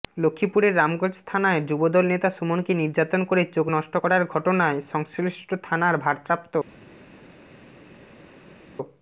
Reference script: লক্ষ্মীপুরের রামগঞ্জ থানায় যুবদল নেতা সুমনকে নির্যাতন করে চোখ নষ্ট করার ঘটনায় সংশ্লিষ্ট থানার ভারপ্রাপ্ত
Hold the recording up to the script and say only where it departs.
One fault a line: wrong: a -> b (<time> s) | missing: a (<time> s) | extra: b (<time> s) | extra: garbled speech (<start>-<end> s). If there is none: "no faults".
no faults